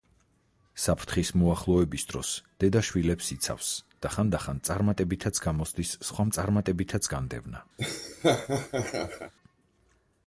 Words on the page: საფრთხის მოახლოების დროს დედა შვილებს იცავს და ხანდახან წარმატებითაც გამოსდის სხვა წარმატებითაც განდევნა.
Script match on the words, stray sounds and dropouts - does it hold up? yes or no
no